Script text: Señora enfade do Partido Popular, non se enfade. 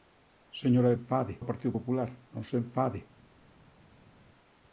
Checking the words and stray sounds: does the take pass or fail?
pass